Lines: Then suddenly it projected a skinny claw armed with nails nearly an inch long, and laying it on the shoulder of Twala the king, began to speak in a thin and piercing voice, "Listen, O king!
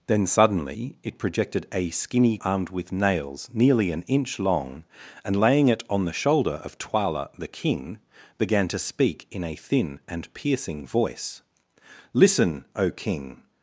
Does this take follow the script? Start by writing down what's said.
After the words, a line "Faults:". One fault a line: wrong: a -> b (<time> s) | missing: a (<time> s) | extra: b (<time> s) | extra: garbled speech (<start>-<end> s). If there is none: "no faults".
Then suddenly it projected a skinny armed with nails nearly an inch long, and laying it on the shoulder of Twala the king, began to speak in a thin and piercing voice, "Listen, O king!
Faults:
missing: claw (2.4 s)